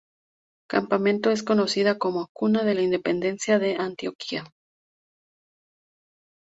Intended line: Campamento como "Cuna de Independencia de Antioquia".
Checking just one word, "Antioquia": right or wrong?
right